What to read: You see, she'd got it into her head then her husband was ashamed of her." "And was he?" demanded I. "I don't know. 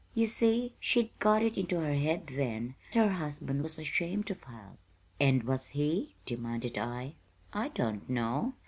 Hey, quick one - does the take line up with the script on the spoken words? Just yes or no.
yes